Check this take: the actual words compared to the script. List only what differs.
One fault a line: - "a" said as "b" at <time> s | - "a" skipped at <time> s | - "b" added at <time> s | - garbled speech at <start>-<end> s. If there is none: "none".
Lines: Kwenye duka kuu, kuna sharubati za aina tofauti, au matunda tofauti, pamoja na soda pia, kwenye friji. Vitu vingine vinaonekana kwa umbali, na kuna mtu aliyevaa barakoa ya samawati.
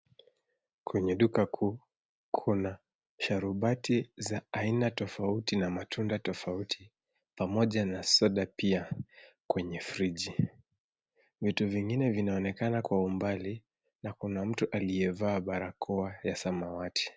- "au" said as "na" at 5.6 s